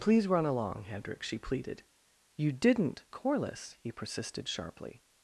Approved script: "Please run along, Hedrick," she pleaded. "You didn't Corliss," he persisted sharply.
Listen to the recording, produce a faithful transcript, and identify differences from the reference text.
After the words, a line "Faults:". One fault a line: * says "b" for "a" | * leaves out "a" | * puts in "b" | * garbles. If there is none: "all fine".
"Please run along, Hedrick," she pleaded. "You didn't Corliss," he persisted sharply.
Faults:
all fine